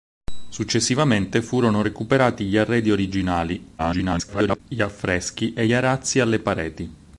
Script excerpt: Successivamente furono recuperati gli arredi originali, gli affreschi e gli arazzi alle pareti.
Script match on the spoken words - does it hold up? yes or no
no